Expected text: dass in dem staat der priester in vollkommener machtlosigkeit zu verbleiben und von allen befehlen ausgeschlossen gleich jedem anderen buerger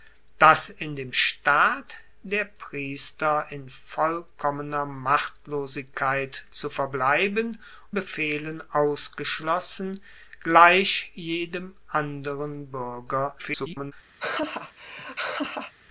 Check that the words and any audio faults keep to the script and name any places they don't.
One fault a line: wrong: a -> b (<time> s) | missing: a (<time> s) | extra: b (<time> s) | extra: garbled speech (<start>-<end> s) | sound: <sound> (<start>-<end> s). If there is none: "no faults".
missing: und von allen (7.6 s)
extra: garbled speech (13.4-13.9 s)
sound: laugh (14.2-15.7 s)